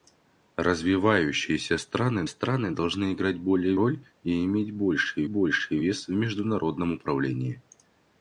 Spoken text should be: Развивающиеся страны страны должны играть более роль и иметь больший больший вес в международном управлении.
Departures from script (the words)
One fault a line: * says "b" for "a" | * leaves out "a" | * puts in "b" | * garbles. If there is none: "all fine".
all fine